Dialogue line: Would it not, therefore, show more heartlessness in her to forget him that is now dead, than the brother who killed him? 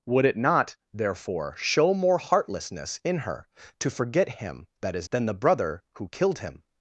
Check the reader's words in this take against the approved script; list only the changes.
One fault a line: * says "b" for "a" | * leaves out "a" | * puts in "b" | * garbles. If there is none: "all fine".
* leaves out "now dead"